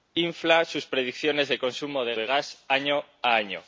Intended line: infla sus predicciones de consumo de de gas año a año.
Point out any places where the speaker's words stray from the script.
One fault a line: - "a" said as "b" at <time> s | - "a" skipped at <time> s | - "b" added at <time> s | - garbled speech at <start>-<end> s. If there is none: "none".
none